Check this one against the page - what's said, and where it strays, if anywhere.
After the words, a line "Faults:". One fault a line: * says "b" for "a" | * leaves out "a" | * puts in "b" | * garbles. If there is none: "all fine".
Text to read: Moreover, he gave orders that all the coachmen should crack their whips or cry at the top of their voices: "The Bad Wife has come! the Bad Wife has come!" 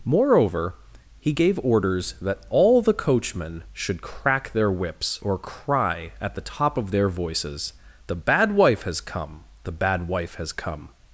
Moreover, he gave orders that all the coachmen should crack their whips or cry at the top of their voices: "The Bad Wife has come! the Bad Wife has come!"
Faults:
all fine